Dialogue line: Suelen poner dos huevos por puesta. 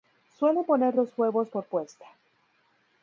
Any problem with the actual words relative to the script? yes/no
no